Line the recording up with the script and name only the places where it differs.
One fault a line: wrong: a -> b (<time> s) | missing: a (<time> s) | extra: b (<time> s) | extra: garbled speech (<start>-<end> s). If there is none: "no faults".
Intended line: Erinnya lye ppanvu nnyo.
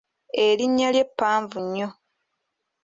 no faults